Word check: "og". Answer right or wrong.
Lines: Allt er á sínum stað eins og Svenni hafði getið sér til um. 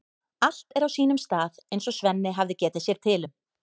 right